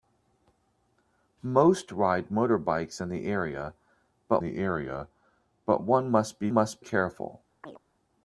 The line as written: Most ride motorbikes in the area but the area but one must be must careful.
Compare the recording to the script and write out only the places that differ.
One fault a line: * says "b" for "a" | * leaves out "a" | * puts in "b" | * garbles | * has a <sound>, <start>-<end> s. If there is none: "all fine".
* has a chirp, 7.6-7.8 s